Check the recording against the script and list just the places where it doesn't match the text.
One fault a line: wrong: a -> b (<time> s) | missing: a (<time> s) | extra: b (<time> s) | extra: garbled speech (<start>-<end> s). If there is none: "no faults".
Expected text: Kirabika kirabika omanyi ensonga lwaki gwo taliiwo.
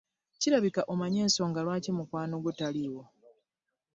missing: kirabika (0.8 s)
extra: mukwano (2.0 s)